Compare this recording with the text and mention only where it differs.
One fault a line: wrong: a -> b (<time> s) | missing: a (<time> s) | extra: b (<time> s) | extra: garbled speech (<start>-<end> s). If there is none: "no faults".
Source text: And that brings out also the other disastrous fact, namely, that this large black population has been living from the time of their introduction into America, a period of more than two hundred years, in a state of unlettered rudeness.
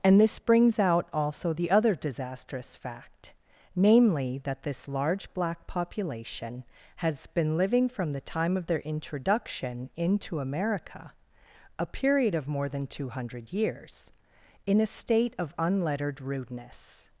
wrong: that -> this (0.2 s)